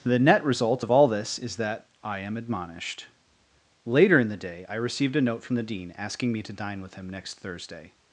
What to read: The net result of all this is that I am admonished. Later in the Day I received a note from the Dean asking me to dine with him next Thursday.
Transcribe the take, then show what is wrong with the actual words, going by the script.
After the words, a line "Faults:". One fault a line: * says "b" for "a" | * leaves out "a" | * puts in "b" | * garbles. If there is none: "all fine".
The net result of all this is that I am admonished. Later in the Day I received a note from the Dean asking me to dine with him next Thursday.
Faults:
all fine